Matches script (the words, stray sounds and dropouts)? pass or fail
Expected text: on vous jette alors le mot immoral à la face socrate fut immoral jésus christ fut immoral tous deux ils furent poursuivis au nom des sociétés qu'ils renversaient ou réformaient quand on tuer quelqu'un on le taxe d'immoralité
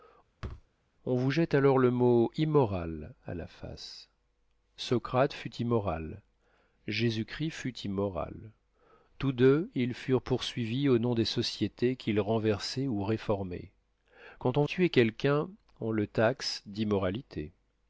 fail